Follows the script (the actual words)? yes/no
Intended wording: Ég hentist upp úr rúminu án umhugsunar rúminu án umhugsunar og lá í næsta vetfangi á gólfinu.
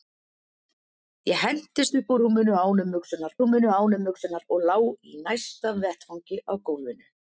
yes